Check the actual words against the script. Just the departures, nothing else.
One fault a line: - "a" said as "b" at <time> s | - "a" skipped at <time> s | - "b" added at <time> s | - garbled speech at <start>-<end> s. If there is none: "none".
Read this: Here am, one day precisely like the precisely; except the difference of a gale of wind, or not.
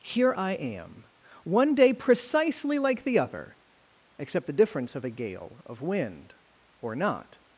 - "I" added at 0.3 s
- "precisely" said as "other" at 3.2 s